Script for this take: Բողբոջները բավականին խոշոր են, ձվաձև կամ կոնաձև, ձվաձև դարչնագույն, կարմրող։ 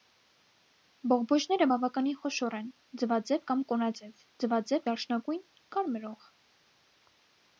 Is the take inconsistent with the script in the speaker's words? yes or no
no